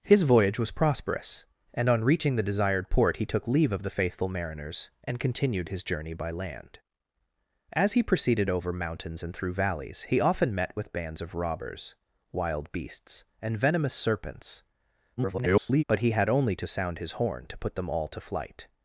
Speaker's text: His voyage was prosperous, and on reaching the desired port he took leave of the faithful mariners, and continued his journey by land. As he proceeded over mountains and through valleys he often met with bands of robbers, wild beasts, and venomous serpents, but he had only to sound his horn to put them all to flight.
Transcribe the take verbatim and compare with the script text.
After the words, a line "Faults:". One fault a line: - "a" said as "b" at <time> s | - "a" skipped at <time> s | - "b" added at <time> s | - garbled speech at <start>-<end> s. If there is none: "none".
His voyage was prosperous, and on reaching the desired port he took leave of the faithful mariners, and continued his journey by land. As he proceeded over mountains and through valleys he often met with bands of robbers, wild beasts, and venomous serpents, [garbled] but he had only to sound his horn to put them all to flight.
Faults:
- garbled speech at 15.2-15.8 s